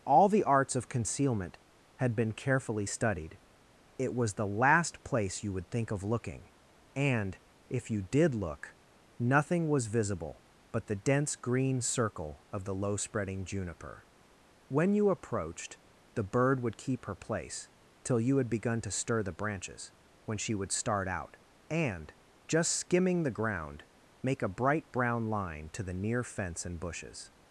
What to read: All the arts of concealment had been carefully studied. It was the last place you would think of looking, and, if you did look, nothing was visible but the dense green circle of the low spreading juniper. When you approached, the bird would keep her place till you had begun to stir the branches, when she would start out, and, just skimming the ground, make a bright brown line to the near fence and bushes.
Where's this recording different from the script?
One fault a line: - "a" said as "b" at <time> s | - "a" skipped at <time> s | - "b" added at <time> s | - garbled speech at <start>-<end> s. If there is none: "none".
none